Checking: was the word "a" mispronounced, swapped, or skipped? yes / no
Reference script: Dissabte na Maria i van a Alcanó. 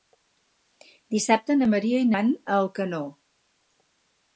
no